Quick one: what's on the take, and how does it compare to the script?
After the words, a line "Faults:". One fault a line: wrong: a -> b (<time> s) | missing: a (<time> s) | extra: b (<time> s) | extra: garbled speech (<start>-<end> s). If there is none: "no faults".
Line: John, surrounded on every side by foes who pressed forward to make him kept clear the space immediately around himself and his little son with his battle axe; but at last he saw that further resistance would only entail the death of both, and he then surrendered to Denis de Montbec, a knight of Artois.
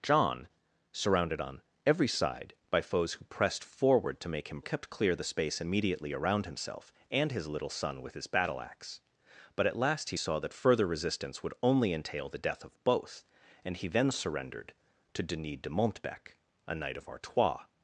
John, surrounded on every side by foes who pressed forward to make him kept clear the space immediately around himself and his little son with his battle axe; but at last he saw that further resistance would only entail the death of both, and he then surrendered to Denis de Montbec, a knight of Artois.
Faults:
no faults